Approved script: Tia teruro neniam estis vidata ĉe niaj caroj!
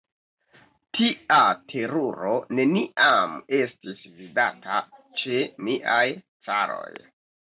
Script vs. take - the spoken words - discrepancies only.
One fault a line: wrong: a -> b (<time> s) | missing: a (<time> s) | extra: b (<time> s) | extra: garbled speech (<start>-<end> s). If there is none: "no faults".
no faults